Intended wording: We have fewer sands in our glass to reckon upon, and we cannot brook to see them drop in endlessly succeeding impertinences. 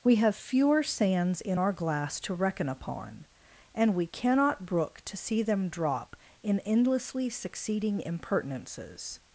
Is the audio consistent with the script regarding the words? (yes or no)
yes